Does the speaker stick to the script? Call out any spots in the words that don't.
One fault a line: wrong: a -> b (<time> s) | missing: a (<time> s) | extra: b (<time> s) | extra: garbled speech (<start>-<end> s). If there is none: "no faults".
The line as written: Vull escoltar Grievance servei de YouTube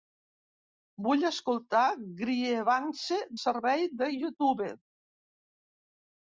no faults